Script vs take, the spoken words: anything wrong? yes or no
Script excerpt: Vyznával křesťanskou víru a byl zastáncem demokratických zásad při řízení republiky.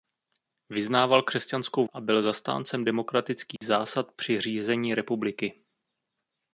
yes